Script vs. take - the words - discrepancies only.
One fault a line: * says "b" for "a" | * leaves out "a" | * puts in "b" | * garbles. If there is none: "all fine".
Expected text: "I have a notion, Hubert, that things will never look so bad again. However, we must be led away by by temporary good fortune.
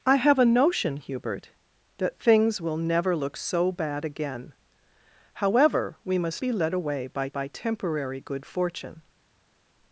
all fine